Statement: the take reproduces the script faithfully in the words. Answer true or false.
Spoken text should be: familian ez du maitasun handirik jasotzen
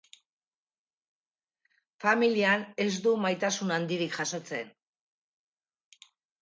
true